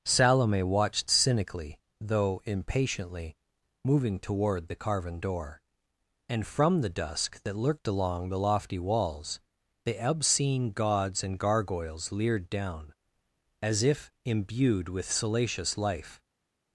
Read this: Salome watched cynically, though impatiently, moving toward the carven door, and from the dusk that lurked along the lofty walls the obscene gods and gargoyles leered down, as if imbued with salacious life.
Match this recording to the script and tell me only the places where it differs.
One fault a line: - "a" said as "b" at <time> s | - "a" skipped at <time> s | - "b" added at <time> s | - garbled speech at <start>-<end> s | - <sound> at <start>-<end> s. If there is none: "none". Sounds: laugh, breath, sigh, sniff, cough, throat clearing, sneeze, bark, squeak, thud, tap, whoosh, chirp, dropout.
none